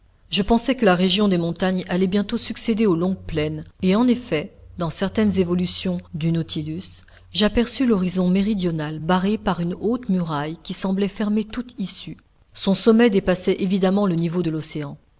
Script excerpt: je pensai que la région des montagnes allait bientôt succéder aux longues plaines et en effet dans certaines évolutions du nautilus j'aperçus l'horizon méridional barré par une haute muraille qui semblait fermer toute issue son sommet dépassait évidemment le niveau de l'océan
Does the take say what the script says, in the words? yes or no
yes